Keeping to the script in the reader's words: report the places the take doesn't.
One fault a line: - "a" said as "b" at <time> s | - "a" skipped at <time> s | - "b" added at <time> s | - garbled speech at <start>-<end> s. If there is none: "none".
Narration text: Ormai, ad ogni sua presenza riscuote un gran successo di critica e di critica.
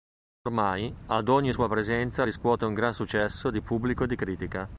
- "critica" said as "pubblico" at 3.6 s